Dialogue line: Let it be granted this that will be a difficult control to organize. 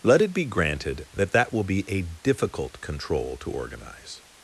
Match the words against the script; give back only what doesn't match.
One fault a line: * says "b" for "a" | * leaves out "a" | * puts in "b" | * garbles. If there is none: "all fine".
* says "that" for "this"